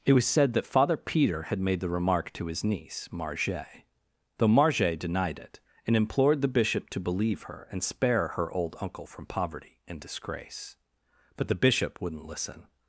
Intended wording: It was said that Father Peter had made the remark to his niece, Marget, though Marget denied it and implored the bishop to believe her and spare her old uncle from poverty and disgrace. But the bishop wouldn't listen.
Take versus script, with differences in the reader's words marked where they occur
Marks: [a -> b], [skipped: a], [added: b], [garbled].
It was said that Father Peter had made the remark to his niece, Marget, though Marget denied it and implored the bishop to believe her and spare her old uncle from poverty and disgrace. But the bishop wouldn't listen.